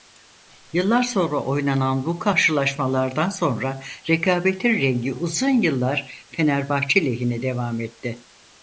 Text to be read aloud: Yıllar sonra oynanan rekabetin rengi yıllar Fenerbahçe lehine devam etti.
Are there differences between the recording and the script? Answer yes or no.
yes